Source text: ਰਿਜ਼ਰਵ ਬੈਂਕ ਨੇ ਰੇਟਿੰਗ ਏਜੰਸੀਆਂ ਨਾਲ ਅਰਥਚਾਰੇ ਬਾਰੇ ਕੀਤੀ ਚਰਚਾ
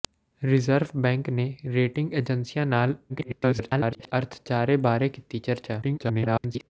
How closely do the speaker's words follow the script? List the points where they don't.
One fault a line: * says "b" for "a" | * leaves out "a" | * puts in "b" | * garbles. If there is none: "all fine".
* garbles
* garbles